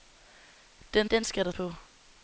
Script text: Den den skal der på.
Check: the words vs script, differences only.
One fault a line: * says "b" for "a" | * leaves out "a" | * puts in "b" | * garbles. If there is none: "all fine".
all fine